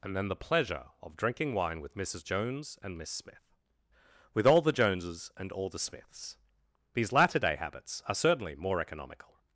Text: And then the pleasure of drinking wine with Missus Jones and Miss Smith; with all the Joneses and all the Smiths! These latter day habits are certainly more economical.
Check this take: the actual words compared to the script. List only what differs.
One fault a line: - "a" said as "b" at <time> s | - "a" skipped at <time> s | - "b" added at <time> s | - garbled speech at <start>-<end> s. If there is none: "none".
none